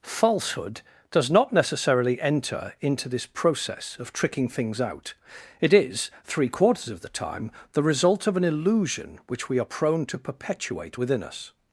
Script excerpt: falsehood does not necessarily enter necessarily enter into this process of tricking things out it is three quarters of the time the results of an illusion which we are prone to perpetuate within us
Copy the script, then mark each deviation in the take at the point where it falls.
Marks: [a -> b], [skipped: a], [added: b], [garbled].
falsehood does not necessarily enter [skipped: necessarily enter] into this process of tricking things out it is three quarters of the time the [results -> result] of an illusion which we are prone to perpetuate within us